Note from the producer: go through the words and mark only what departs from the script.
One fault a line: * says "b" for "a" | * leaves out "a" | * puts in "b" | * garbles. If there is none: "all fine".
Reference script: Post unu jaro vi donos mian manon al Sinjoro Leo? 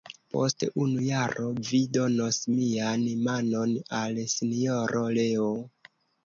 all fine